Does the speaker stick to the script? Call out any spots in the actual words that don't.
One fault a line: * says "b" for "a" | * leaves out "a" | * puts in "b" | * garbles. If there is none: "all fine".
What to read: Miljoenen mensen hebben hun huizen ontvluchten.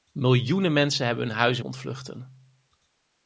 all fine